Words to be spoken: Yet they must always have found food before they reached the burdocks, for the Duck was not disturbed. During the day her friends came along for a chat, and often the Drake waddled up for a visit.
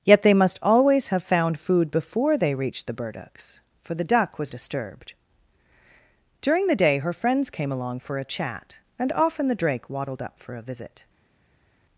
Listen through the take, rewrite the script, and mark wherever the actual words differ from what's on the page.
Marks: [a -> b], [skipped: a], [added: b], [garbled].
Yet they must always have found food before they reached the burdocks, for the Duck was [skipped: not] disturbed. During the day her friends came along for a chat, and often the Drake waddled up for a visit.